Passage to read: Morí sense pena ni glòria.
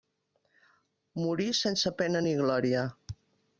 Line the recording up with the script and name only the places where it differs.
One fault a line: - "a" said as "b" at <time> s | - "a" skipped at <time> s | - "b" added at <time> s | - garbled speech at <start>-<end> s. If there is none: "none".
none